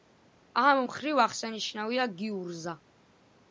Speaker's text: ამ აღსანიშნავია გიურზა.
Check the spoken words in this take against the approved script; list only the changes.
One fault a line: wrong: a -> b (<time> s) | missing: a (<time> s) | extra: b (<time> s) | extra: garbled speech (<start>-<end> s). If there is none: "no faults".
extra: მხრივ (0.8 s)